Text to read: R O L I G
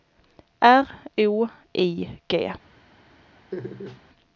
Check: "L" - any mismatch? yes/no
yes